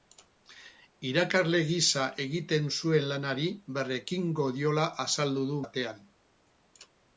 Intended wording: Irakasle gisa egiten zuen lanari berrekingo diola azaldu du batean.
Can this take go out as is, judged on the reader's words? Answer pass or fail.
pass